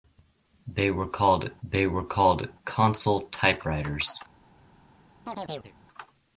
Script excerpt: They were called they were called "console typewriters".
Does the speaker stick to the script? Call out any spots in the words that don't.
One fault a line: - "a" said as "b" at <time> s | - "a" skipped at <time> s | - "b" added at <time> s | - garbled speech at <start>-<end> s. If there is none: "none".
none